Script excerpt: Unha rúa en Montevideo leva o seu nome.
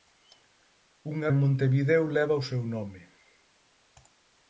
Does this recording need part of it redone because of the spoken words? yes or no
yes